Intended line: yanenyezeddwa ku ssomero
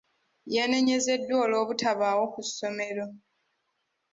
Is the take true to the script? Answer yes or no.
no